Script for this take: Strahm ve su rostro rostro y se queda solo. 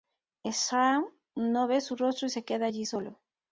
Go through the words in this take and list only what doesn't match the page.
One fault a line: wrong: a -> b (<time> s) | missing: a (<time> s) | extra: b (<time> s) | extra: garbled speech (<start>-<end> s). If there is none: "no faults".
extra: no (1.4 s)
missing: rostro (2.3 s)
extra: allí (2.6 s)